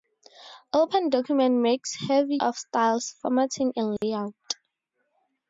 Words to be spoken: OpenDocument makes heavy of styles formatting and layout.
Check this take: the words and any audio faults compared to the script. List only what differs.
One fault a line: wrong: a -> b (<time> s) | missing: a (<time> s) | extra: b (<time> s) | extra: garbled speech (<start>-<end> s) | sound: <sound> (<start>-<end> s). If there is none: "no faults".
sound: dropout (4.0-4.0 s)